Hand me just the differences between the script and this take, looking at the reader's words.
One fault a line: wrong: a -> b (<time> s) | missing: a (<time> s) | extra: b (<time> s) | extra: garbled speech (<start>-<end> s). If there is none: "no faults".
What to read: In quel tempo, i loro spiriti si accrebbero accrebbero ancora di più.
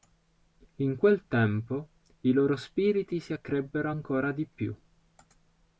missing: accrebbero (3.9 s)